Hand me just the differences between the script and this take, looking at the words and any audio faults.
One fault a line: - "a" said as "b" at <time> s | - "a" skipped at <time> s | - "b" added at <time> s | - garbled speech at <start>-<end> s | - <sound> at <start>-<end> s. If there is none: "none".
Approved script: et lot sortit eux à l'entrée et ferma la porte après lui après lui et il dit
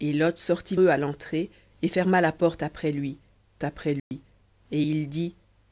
- dropout at 4.0-4.1 s